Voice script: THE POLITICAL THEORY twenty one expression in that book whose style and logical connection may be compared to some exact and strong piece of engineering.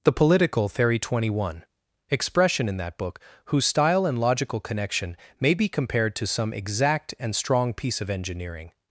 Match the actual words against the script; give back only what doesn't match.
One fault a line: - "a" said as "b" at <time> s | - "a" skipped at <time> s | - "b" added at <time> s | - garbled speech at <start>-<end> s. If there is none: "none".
none